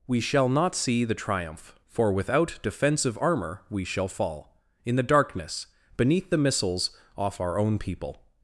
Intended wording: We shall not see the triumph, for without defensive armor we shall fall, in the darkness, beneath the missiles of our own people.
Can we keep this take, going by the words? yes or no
no